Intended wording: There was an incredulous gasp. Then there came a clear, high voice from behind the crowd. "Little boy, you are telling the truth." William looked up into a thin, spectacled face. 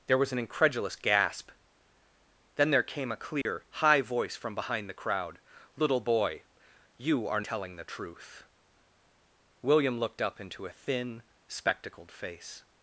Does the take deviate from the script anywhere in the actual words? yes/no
no